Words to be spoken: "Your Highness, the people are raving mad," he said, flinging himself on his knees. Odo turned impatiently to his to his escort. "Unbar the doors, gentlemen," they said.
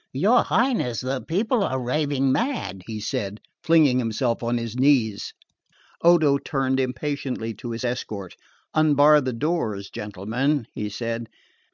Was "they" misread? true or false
true